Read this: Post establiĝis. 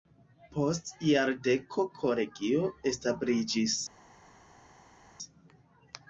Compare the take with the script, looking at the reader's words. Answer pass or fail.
fail